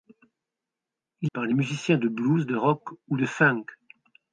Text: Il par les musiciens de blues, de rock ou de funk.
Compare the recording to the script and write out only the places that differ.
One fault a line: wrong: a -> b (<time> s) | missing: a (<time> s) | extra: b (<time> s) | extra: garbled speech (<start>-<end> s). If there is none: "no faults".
no faults